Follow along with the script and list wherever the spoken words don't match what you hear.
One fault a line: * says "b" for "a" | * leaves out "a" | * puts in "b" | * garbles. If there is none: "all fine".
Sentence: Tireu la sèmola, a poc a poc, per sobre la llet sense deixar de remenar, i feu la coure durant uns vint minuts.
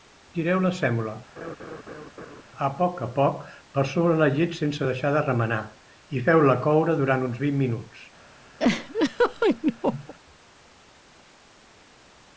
all fine